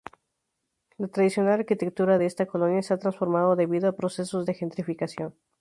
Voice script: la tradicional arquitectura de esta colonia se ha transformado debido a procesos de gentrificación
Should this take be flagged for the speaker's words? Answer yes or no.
no